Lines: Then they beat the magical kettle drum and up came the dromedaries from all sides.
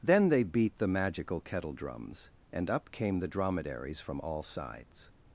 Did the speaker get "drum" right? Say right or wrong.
wrong